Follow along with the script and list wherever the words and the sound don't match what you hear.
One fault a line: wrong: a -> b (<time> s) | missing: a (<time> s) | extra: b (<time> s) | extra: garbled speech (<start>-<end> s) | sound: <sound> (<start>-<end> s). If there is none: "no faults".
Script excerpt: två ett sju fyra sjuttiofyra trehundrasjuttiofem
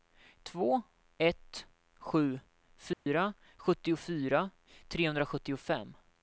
sound: dropout (2.9-3.1 s)